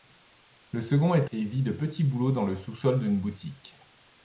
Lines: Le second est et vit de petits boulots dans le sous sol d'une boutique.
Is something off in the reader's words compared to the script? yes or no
no